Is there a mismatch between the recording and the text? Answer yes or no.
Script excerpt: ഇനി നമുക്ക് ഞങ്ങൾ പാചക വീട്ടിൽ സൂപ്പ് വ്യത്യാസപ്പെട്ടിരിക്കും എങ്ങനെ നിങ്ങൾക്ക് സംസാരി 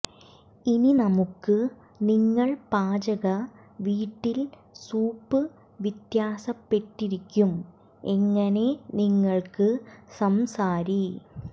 yes